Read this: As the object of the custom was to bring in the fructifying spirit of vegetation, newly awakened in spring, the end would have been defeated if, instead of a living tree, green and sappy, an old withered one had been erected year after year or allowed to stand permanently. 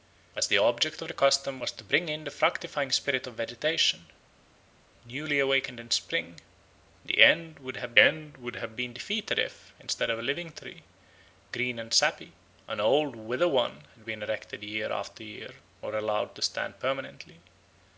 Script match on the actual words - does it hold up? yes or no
no